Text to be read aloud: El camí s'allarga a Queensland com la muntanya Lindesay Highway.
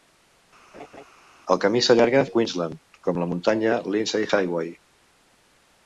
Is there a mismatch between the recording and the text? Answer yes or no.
no